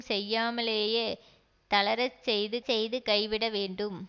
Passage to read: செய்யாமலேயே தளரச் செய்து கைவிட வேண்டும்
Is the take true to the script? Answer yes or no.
no